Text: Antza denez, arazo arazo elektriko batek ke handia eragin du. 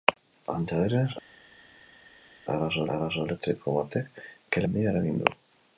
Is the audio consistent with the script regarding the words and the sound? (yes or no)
yes